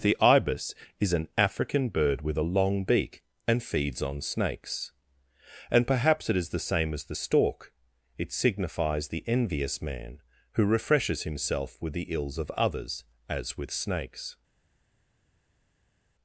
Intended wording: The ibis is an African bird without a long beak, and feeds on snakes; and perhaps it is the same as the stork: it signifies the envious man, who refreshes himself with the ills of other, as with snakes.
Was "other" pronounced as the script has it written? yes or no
no